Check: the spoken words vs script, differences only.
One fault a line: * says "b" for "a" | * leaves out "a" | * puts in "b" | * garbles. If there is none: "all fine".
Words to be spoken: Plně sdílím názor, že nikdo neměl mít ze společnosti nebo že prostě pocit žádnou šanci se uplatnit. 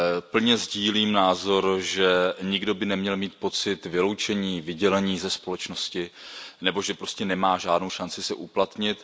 * puts in "by"
* puts in "pocit vyloučení vydělení"
* says "nemá" for "pocit"